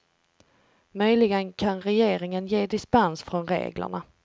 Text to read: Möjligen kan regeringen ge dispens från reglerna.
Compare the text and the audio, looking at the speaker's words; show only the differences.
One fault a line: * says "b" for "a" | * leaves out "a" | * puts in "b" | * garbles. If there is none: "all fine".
all fine